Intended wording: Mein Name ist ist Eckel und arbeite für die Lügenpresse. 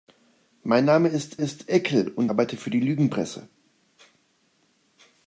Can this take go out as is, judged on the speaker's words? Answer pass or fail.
pass